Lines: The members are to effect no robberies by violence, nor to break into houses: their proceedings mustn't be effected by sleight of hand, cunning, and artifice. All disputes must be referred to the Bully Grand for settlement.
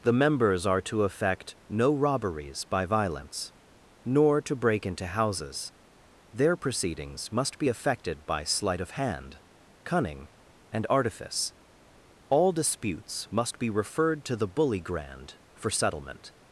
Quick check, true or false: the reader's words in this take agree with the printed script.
false